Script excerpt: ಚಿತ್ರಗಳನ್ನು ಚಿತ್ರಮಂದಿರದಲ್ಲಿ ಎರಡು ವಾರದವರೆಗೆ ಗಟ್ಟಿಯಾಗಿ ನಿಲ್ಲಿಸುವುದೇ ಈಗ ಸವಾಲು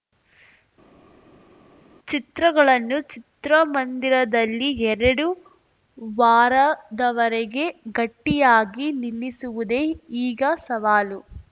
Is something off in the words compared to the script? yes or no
no